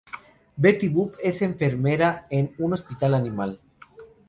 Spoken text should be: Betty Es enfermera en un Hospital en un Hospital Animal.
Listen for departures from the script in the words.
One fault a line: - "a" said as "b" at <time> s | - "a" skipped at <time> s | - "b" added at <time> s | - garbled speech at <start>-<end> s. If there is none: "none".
- "Boop" added at 0.9 s
- "en un Hospital" skipped at 3.1 s